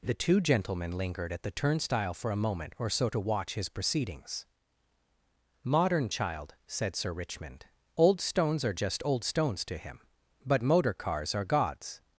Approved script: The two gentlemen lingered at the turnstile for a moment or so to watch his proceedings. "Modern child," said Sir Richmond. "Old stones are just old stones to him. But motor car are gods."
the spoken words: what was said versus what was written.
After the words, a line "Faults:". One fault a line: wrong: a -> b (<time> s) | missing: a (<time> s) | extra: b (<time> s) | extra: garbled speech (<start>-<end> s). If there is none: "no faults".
The two gentlemen lingered at the turnstile for a moment or so to watch his proceedings. "Modern child," said Sir Richmond. "Old stones are just old stones to him. But motor cars are gods."
Faults:
wrong: car -> cars (10.9 s)